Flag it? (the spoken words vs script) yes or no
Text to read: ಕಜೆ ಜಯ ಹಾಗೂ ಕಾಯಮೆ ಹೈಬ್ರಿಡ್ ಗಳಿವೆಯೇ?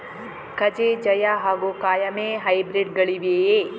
no